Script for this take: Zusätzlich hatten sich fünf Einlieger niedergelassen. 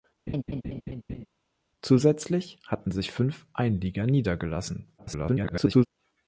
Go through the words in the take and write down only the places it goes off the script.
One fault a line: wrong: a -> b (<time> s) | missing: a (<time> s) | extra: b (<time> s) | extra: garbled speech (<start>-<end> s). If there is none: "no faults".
extra: garbled speech (5.0-5.9 s)